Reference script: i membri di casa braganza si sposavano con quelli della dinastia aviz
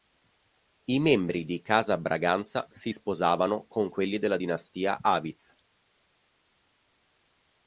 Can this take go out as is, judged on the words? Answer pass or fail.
pass